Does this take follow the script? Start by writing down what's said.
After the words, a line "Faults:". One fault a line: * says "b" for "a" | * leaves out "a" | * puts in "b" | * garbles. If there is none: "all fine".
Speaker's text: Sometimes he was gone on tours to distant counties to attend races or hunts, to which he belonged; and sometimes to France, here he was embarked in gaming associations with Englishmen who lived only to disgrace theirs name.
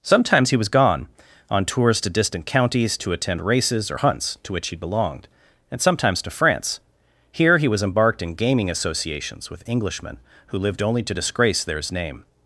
Sometimes he was gone on tours to distant counties to attend races or hunts, to which he belonged; and sometimes to France, here he was embarked in gaming associations with Englishmen who lived only to disgrace theirs name.
Faults:
all fine